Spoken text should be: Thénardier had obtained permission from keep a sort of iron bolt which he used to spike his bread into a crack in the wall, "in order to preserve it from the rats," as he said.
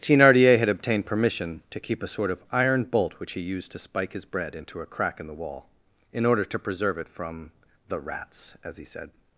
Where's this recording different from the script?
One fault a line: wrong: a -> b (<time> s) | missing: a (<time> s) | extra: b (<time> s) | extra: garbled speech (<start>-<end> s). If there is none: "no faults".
wrong: from -> to (1.7 s)